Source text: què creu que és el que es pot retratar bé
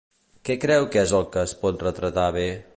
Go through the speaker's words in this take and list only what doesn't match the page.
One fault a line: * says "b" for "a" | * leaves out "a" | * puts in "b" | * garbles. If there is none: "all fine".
all fine